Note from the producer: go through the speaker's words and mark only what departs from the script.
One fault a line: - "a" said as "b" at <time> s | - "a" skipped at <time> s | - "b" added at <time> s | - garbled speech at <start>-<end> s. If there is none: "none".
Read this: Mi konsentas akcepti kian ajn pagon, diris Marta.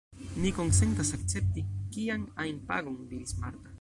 none